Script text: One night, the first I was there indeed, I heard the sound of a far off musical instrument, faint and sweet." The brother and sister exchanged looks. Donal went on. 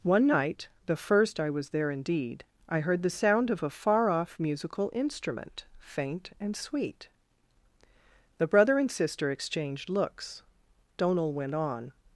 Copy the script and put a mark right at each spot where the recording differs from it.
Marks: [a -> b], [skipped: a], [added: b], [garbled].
One night, the first I was there indeed, I heard the sound of a far off musical instrument, faint and sweet." The brother and sister exchanged looks. Donal went on.